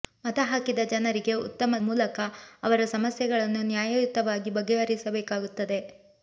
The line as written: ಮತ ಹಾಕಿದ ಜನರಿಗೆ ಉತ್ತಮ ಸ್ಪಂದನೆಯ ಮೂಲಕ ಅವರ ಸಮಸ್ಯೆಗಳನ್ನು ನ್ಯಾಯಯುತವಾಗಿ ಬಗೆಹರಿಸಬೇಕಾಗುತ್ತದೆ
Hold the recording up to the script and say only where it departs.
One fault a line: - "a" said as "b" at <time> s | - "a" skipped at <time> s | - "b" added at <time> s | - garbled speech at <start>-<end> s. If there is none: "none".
- "ಸ್ಪಂದನೆಯ" skipped at 1.8 s